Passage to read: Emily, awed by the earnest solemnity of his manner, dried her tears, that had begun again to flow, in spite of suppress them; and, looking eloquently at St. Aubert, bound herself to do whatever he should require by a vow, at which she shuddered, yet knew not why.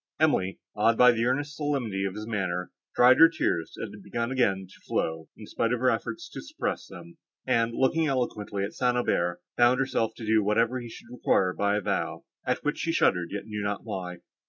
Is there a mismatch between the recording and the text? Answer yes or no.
yes